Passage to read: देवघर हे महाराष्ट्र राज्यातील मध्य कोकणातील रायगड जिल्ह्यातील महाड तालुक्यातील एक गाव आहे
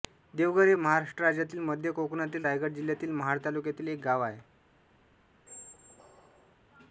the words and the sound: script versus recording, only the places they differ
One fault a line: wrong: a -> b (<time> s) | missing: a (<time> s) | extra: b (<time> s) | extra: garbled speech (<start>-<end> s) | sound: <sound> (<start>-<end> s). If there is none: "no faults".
sound: squeak (5.5-6.6 s)